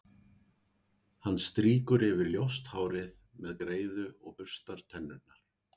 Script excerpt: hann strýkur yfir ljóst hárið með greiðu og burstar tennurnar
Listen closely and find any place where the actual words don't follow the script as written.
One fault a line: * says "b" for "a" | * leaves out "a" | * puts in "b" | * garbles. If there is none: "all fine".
all fine